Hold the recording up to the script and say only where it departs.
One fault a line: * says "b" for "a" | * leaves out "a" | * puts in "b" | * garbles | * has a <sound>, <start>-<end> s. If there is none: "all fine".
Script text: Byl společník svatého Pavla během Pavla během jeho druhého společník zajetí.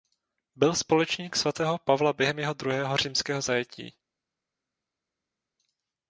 * leaves out "Pavla během"
* says "římského" for "společník"